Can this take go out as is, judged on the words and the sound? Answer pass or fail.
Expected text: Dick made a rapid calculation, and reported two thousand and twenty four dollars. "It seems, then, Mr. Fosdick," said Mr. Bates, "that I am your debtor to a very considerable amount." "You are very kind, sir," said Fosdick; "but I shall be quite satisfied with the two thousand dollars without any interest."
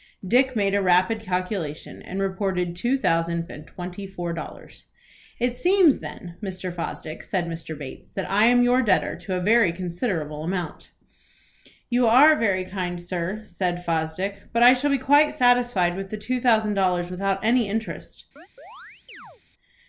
fail